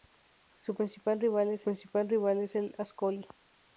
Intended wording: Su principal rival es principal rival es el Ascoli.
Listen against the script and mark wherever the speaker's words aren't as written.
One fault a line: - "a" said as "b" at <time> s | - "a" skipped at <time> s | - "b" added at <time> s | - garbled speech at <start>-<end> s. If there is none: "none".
none